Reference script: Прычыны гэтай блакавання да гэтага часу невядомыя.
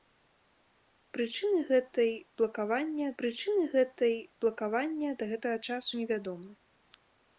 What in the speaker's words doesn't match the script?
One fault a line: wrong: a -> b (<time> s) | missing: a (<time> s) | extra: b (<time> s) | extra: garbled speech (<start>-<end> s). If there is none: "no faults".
extra: прычыны гэтай блакавання (3.2 s)